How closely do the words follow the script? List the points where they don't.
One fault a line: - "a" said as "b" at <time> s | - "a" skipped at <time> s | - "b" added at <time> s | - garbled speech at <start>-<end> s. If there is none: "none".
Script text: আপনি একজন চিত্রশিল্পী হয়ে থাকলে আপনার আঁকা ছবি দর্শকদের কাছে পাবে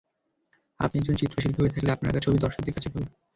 none